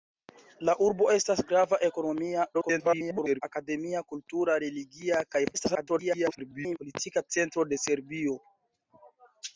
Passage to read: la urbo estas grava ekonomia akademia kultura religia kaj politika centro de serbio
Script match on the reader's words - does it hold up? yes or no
no